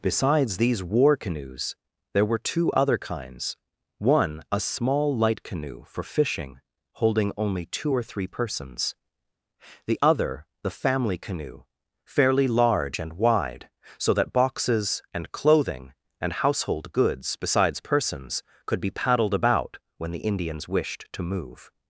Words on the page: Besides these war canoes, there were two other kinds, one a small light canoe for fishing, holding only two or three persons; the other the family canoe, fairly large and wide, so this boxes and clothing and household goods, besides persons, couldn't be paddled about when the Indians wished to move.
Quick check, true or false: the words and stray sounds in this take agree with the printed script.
false